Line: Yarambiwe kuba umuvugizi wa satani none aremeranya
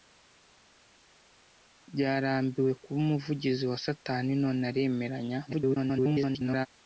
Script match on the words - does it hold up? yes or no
no